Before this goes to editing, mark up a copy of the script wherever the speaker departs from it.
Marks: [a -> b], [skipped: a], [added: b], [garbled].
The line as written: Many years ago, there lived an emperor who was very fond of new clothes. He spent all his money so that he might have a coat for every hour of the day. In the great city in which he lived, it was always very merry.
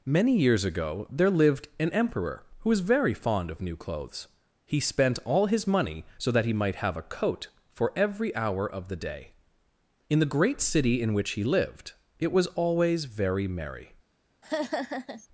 Many years ago, there lived an emperor who was very fond of new clothes. He spent all his money so that he might have a coat for every hour of the day. In the great city in which he lived, it was always very merry.